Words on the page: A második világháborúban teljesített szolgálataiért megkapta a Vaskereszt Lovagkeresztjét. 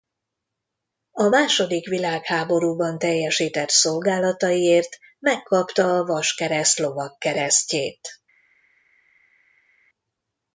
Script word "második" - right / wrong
right